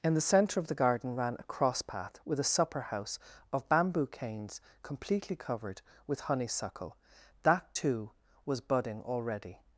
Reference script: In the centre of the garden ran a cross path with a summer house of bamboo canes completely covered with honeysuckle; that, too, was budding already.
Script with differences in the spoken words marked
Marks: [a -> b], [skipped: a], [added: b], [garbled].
In the centre of the garden ran a cross path with a [summer -> supper] house of bamboo canes completely covered with honeysuckle; that, too, was budding already.